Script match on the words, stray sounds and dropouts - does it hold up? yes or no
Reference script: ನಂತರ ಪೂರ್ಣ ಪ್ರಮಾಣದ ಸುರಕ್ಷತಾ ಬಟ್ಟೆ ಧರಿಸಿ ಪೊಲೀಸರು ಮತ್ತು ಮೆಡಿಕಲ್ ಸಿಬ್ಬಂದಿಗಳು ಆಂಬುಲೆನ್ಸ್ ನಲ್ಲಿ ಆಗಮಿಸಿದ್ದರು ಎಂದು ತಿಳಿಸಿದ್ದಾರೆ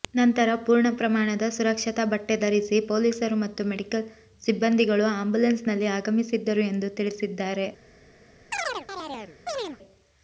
no